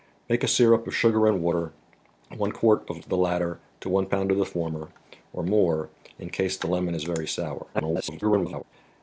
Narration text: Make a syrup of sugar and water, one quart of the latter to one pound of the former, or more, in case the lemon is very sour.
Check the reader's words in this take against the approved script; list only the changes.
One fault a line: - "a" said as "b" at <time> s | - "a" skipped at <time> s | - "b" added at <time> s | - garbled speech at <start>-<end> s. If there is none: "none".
- garbled speech at 7.7-8.6 s